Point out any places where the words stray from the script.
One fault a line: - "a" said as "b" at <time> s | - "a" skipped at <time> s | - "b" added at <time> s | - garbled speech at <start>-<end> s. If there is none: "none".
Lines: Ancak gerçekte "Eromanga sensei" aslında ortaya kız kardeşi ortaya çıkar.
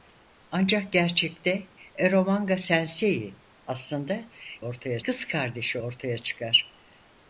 none